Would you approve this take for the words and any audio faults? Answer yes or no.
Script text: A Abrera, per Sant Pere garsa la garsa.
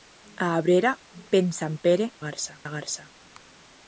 yes